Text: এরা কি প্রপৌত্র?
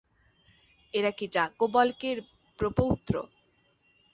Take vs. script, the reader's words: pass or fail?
fail